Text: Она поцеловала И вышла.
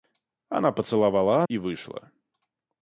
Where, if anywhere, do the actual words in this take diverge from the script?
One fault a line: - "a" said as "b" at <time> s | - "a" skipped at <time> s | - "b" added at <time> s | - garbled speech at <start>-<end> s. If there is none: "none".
none